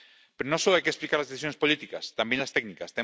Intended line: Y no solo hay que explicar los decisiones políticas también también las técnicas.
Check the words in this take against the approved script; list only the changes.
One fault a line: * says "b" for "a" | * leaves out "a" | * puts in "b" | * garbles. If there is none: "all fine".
* says "Pero" for "Y"
* says "las" for "los"
* leaves out "también"